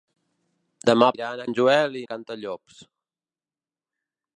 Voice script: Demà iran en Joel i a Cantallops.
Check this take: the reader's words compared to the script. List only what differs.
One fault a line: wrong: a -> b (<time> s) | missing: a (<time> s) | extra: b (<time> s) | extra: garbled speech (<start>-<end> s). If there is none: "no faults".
no faults